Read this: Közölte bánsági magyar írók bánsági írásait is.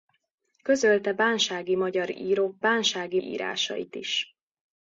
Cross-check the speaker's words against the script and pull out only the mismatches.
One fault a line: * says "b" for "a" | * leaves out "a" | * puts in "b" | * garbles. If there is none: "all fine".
all fine